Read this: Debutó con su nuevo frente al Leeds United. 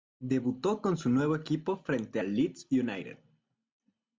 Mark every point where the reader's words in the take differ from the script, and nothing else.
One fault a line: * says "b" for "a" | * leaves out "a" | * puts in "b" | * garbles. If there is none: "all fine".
* puts in "equipo"